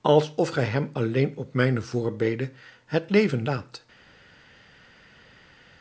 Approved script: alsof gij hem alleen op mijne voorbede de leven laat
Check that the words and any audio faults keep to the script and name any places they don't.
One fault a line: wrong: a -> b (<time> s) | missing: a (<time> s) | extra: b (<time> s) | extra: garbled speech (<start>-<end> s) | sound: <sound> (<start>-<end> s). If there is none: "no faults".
wrong: de -> het (2.9 s)